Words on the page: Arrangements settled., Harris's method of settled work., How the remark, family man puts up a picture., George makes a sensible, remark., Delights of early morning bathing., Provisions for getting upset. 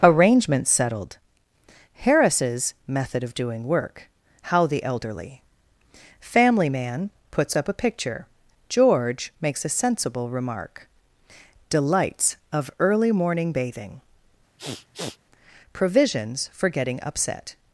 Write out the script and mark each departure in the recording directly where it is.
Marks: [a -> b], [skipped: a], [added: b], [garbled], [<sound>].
Arrangements settled., Harris's method of [settled -> doing] work., How the [remark, -> elderly] family man puts up a picture., George makes a sensible, remark., Delights of early morning bathing., [sniff] Provisions for getting upset.